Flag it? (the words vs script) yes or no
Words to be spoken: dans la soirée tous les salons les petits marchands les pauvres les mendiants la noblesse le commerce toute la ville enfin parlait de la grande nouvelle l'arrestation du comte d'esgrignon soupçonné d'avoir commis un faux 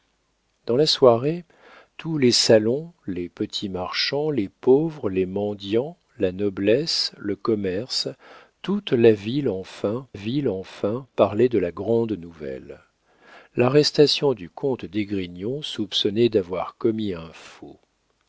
yes